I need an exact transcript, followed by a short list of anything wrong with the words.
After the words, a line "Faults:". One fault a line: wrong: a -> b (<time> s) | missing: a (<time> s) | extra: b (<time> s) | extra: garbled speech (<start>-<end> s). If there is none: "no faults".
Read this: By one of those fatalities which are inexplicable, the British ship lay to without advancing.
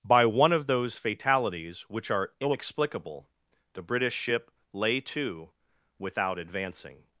By one of those fatalities which are inexplicable, the British ship lay to without advancing.
Faults:
no faults